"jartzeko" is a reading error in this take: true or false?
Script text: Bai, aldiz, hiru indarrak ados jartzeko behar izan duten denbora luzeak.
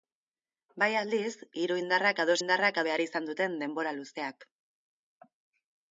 true